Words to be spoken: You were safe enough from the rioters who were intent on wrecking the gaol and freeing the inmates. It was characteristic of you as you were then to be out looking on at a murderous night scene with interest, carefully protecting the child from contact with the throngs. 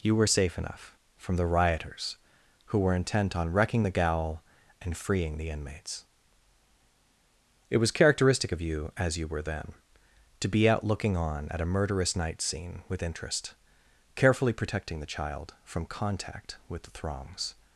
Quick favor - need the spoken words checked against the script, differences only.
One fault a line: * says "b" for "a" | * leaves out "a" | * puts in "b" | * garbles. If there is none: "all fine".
all fine